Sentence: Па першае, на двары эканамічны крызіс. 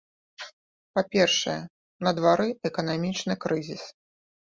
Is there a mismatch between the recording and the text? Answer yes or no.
no